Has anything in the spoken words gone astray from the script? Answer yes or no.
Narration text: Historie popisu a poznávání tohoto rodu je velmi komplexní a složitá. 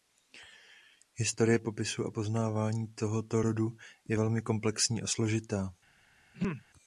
no